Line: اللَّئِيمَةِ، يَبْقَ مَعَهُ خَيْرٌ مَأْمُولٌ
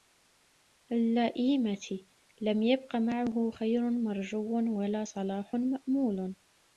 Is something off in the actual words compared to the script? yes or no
yes